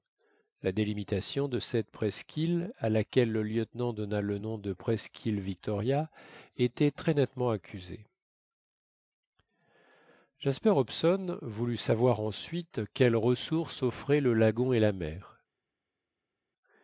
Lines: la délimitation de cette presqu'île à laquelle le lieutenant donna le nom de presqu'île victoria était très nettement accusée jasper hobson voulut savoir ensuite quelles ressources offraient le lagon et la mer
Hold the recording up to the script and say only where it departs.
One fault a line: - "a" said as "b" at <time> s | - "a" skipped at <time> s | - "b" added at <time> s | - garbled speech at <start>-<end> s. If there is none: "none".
none